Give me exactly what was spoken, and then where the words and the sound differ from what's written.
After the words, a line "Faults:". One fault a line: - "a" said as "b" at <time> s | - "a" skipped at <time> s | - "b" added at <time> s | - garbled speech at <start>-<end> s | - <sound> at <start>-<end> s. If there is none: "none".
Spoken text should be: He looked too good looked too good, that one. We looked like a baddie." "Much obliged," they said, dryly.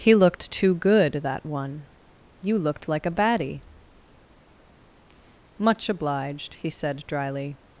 He looked too good, that one. You looked like a baddie." "Much obliged," he said, dryly.
Faults:
- "looked too good" skipped at 1.2 s
- "We" said as "You" at 2.4 s
- "they" said as "he" at 6.5 s